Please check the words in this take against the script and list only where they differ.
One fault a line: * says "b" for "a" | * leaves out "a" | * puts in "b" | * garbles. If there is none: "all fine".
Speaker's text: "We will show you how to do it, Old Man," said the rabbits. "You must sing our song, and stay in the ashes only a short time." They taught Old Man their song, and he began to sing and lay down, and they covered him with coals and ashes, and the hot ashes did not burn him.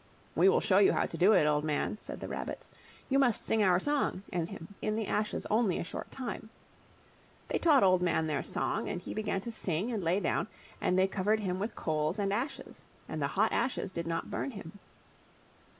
* says "him" for "stay"